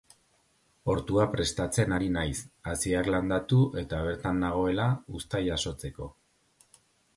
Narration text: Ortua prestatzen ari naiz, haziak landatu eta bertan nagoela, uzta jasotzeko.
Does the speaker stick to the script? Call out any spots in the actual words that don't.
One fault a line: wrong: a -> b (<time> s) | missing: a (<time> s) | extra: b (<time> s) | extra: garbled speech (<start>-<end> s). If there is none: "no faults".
no faults